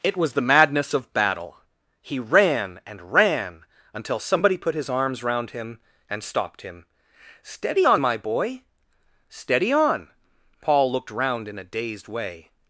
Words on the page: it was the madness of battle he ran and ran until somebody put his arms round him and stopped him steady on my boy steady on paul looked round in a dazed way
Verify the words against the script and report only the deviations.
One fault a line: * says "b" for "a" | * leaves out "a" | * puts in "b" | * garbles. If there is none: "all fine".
all fine